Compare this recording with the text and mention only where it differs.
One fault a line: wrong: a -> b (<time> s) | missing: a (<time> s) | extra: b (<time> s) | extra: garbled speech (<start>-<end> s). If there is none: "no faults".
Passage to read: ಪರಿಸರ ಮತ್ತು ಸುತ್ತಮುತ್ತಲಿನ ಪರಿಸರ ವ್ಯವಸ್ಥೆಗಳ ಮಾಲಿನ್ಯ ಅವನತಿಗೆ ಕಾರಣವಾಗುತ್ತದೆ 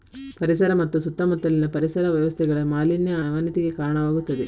no faults